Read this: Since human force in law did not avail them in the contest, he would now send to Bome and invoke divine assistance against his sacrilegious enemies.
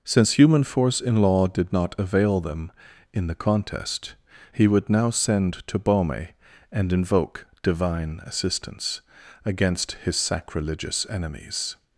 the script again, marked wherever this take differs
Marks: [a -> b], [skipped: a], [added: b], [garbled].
Since human force in law did not avail them in the contest, he would now send to Bome and invoke divine assistance against his sacrilegious enemies.